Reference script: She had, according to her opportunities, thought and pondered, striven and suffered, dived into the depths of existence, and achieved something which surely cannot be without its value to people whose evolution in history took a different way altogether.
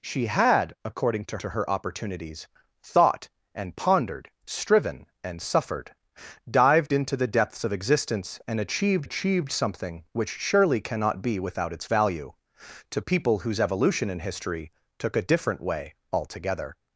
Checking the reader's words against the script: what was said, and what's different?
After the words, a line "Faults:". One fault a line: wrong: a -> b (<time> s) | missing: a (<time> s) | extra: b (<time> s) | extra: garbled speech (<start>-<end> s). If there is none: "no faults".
She had, according to to her opportunities, thought and pondered, striven and suffered, dived into the depths of existence, and achieved achieved something which surely cannot be without its value to people whose evolution in history took a different way altogether.
Faults:
extra: to (1.4 s)
extra: achieved (9.0 s)